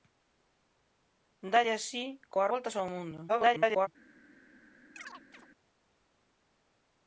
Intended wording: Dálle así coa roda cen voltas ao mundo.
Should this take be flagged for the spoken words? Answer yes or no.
yes